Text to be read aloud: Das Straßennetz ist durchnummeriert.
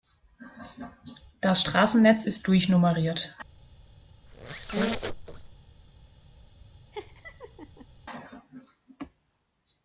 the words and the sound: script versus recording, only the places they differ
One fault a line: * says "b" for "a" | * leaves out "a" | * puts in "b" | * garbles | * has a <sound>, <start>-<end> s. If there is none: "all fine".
* has a squeak, 4.3-5.5 s
* has a laugh, 6.9-7.9 s